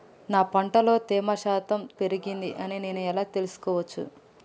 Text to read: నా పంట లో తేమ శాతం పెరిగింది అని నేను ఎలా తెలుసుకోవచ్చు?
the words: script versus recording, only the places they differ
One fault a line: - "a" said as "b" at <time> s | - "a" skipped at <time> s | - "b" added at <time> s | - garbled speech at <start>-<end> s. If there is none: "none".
none